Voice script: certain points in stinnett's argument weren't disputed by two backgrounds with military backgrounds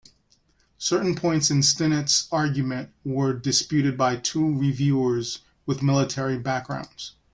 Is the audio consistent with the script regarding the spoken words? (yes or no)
no